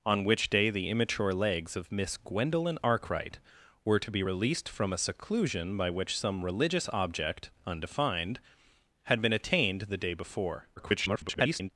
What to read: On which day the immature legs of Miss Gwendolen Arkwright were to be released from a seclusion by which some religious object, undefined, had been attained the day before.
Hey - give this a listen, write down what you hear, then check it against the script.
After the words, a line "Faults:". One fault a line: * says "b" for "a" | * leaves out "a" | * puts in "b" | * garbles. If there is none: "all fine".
On which day the immature legs of Miss Gwendolen Arkwright were to be released from a seclusion by which some religious object, undefined, had been attained the day before. [garbled]
Faults:
* garbles